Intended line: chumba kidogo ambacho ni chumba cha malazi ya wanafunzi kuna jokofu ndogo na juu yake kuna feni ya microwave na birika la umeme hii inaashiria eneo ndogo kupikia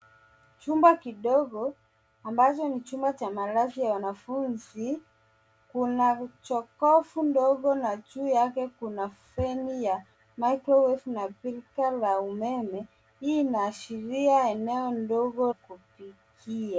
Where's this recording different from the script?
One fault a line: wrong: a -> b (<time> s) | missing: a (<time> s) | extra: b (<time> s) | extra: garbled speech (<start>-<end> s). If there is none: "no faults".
no faults